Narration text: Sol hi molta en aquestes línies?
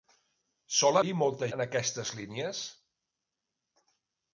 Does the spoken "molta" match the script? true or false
true